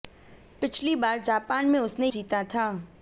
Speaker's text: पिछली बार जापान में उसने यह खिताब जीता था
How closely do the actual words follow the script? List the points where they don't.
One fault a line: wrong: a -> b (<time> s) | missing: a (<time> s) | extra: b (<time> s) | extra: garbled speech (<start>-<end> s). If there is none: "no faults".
missing: यह खिताब (2.1 s)